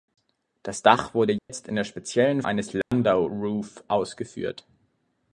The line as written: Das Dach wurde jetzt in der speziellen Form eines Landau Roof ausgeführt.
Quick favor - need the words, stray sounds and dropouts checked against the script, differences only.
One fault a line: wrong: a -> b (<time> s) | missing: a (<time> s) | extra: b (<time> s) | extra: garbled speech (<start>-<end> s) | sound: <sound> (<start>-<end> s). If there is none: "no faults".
sound: dropout (1.4-1.5 s)
missing: Form (2.4 s)
sound: dropout (2.8-2.9 s)